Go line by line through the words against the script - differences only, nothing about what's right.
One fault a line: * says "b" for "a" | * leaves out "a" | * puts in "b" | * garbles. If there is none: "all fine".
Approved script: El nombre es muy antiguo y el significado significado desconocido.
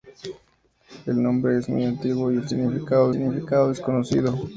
all fine